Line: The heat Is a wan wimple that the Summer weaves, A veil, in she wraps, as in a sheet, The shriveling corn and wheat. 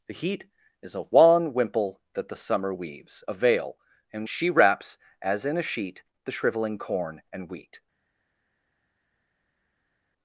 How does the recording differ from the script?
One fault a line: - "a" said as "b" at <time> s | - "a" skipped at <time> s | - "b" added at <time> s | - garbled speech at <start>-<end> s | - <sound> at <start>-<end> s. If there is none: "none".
none